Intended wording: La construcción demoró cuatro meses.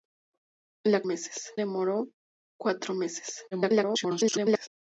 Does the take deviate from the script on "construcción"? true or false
true